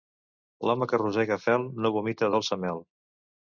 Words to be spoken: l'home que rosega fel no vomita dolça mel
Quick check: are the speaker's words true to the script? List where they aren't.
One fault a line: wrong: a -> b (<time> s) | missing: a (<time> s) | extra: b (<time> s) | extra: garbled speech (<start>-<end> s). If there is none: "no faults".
no faults